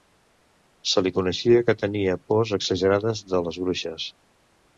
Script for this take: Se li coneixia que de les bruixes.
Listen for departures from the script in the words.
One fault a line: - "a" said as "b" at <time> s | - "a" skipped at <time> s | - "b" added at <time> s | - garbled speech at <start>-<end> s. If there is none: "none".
- "tenia pors exagerades" added at 1.8 s